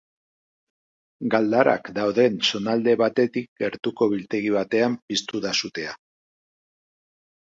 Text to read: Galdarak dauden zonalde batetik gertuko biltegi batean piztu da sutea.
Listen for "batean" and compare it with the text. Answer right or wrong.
right